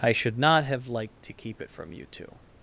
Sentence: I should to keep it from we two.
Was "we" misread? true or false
true